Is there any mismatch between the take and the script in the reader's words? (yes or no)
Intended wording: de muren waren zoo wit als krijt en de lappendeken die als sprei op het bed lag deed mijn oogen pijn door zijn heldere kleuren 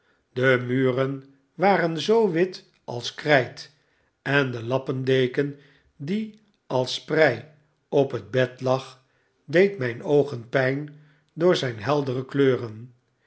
no